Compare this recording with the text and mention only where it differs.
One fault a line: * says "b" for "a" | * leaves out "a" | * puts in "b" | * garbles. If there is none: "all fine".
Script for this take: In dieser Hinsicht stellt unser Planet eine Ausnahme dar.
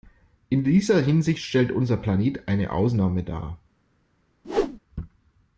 all fine